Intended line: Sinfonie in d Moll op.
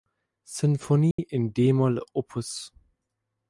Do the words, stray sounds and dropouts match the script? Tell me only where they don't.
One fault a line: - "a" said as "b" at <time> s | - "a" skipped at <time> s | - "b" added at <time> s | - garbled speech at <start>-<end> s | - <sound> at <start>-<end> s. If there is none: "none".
- dropout at 1.1-1.2 s